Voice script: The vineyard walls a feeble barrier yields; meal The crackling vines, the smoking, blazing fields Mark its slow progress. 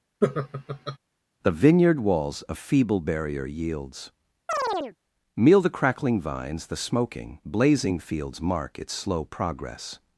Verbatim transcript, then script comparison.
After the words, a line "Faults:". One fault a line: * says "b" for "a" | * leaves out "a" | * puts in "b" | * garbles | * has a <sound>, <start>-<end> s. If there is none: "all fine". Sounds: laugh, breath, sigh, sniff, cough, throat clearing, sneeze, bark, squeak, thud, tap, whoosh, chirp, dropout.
The vineyard walls a feeble barrier yields; meal The crackling vines, the smoking, blazing fields Mark its slow progress.
Faults:
* has a laugh, 0.2-1.0 s
* has a chirp, 4.5-5.0 s